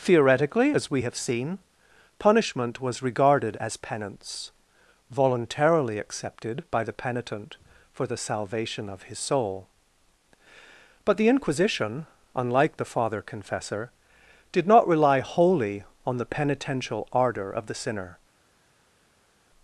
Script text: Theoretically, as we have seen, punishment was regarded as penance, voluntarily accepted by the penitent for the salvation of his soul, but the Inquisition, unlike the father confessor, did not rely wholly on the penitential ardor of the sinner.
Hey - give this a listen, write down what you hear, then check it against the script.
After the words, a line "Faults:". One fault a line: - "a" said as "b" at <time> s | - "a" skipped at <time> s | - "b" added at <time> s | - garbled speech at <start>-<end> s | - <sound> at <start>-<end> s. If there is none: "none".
Theoretically, as we have seen, punishment was regarded as penance, voluntarily accepted by the penitent for the salvation of his soul, but the Inquisition, unlike the father confessor, did not rely wholly on the penitential ardor of the sinner.
Faults:
none